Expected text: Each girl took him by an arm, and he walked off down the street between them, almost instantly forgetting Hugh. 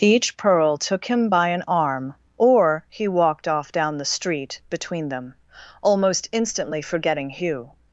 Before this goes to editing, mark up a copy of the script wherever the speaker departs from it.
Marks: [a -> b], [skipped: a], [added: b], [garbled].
Each [girl -> pearl] took him by an arm, [and -> or] he walked off down the street between them, almost instantly forgetting Hugh.